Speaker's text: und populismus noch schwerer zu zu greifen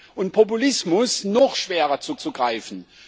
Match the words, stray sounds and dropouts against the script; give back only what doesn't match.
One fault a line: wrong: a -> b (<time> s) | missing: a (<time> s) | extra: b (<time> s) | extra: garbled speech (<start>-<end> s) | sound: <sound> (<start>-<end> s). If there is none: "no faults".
no faults